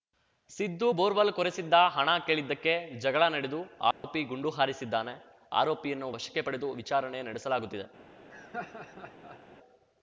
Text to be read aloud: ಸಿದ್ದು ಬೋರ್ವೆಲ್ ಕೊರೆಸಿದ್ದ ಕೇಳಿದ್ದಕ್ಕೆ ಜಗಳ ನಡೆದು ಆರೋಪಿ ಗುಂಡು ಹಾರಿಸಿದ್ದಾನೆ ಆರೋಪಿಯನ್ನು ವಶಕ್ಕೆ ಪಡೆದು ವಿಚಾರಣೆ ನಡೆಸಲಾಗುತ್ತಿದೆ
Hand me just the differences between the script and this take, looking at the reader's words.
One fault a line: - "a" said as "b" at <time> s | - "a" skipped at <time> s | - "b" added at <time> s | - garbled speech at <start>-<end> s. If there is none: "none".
- "ಹಣ" added at 1.9 s